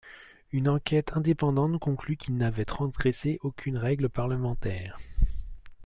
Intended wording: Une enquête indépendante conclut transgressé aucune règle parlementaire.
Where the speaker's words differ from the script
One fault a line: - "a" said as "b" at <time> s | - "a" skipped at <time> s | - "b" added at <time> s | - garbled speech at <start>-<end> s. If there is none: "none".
- "qu'il n'avait" added at 2.1 s